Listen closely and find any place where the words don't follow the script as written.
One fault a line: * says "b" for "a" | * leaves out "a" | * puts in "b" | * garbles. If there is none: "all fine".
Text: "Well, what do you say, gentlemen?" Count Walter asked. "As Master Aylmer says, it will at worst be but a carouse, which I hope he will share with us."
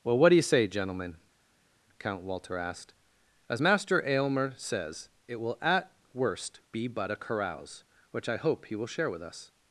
all fine